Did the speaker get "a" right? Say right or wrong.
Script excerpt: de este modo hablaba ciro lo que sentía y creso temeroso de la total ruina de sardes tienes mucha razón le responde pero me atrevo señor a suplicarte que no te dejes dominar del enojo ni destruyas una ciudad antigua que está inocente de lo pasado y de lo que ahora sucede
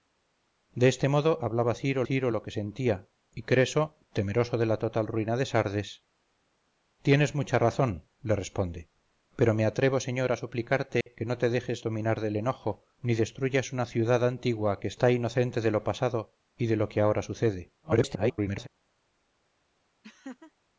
right